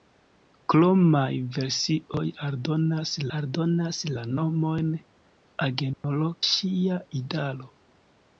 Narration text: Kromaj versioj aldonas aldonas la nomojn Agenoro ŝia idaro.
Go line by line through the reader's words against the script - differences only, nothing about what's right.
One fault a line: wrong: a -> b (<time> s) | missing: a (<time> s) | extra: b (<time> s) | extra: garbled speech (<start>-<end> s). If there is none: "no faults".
no faults